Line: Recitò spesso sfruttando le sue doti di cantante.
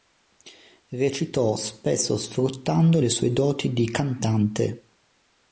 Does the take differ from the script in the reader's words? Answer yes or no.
no